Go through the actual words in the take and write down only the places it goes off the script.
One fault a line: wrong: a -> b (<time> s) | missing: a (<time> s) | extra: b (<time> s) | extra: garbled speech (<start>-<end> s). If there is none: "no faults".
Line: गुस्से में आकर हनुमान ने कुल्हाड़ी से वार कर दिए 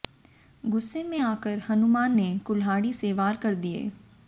no faults